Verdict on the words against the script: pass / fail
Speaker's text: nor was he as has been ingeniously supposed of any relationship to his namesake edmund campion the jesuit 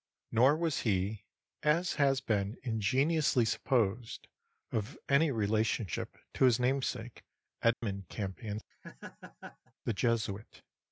pass